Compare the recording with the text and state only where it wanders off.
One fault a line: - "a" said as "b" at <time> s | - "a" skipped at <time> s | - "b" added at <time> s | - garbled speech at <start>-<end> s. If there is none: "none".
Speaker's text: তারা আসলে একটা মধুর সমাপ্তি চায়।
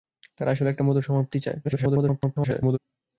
- garbled speech at 1.6-2.8 s